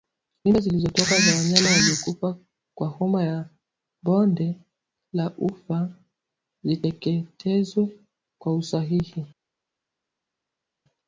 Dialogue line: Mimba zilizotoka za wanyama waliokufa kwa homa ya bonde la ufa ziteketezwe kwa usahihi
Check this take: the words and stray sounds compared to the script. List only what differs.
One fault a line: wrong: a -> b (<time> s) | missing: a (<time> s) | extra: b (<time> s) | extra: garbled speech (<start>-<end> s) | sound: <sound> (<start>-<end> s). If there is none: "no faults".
no faults